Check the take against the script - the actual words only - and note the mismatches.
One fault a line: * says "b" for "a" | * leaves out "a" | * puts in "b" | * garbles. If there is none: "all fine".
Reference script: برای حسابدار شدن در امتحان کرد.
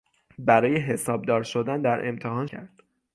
all fine